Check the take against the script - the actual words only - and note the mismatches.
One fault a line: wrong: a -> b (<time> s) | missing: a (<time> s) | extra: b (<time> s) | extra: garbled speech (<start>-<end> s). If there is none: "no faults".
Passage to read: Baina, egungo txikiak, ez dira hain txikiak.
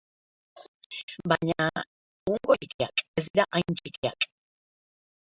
no faults